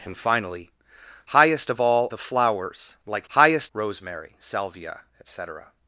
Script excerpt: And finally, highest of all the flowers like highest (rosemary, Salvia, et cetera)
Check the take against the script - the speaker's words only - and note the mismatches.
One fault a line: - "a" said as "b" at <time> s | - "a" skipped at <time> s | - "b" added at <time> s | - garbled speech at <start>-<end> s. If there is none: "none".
none